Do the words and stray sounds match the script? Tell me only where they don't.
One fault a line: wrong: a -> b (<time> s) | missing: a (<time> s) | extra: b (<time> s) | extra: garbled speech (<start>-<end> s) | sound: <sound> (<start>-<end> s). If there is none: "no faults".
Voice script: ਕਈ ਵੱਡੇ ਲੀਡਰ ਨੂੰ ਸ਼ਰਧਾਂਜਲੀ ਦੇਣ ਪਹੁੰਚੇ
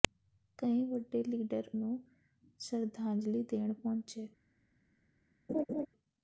sound: laugh (5.5-5.9 s)